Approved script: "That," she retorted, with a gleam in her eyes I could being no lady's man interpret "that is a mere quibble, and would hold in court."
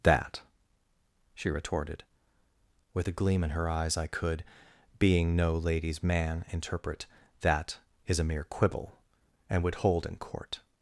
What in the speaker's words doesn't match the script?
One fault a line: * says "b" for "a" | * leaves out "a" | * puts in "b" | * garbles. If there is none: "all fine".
all fine